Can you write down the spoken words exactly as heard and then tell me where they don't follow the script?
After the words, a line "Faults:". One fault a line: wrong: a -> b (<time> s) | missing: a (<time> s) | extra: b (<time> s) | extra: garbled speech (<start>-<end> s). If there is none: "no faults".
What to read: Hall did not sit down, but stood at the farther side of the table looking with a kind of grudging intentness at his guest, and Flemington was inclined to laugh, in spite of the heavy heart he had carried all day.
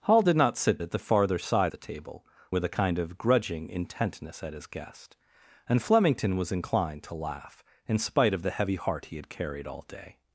Hall did not sit at the farther side the table with a kind of grudging intentness at his guest, and Flemington was inclined to laugh, in spite of the heavy heart he had carried all day.
Faults:
missing: down but stood (0.8 s)
missing: of (1.7 s)
missing: looking (2.3 s)